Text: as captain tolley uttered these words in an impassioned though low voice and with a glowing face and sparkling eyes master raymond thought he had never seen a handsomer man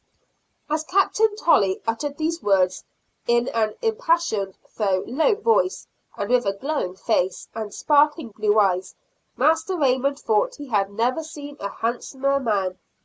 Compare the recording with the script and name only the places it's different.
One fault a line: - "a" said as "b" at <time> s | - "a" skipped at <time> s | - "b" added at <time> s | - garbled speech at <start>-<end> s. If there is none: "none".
- "blue" added at 8.3 s